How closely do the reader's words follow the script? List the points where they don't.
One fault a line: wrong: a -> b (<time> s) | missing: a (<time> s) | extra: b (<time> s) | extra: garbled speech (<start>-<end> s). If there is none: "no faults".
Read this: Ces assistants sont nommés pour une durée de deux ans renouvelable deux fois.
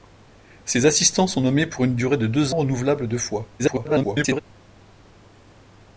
missing: ans (2.5 s)
extra: garbled speech (3.6-4.4 s)